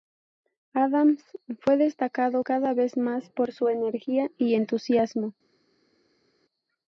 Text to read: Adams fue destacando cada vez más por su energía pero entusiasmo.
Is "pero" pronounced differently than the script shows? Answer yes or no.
yes